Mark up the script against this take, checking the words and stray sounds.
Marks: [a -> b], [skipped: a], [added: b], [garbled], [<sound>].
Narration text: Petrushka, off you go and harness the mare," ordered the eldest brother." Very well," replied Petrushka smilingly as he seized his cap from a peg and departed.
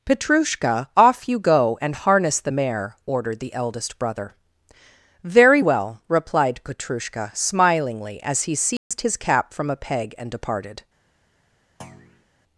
Petrushka, off you go and harness the mare," ordered the eldest brother." Very well," replied Petrushka smilingly as he seized [dropout] his cap from a peg and departed. [thud]